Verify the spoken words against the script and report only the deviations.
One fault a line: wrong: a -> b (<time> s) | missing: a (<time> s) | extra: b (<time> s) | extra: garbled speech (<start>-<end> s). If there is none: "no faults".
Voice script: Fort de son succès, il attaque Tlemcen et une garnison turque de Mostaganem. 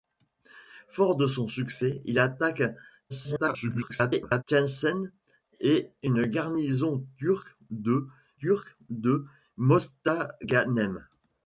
extra: garbled speech (3.1-4.4 s)
extra: turque de (8.4 s)